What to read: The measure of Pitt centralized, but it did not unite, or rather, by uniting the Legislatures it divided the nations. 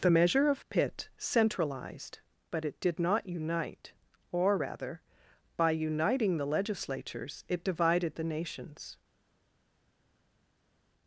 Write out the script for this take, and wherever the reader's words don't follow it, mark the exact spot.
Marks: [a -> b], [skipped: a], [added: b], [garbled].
The measure of Pitt centralized, but it did not unite, or rather, by uniting the Legislatures it divided the nations.